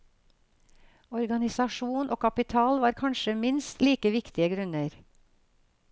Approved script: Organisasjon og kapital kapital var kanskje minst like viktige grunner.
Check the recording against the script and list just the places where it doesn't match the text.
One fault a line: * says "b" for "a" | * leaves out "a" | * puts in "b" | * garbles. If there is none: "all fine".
* leaves out "kapital"